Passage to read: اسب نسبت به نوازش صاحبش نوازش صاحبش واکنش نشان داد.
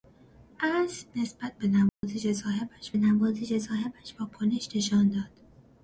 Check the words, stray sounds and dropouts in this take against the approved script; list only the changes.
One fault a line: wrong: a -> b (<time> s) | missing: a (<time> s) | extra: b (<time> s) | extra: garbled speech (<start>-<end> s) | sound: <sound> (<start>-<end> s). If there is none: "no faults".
sound: dropout (1.9-2.0 s)